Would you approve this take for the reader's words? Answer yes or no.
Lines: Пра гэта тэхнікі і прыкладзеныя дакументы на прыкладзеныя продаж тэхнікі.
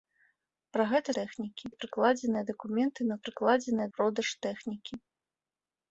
yes